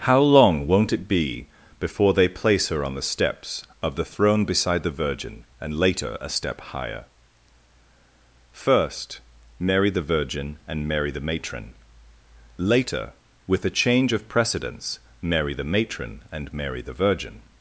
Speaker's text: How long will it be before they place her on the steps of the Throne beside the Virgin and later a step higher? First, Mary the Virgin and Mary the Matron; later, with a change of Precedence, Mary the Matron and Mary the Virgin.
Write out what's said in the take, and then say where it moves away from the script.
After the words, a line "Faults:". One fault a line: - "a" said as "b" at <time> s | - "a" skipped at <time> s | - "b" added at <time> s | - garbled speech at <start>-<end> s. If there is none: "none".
How long won't it be before they place her on the steps of the Throne beside the Virgin and later a step higher? First, Mary the Virgin and Mary the Matron; later, with a change of Precedence, Mary the Matron and Mary the Virgin.
Faults:
- "will" said as "won't" at 0.7 s